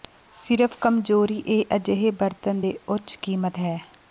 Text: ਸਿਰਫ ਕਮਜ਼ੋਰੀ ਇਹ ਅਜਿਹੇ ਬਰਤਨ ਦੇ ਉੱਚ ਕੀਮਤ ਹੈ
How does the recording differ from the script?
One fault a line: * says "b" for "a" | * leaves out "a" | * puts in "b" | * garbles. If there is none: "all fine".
all fine